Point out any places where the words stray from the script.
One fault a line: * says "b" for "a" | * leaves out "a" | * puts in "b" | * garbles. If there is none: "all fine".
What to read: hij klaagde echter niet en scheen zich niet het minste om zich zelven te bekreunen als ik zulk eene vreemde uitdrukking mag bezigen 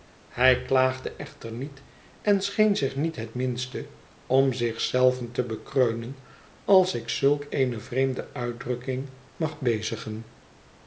all fine